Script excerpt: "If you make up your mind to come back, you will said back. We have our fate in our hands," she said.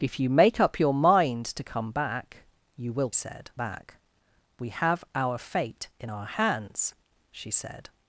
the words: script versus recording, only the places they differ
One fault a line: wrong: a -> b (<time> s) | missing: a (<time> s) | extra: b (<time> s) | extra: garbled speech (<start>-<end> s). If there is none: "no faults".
no faults